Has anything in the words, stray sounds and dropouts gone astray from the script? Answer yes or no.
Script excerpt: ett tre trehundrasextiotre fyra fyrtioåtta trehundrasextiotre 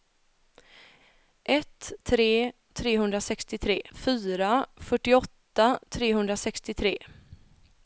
no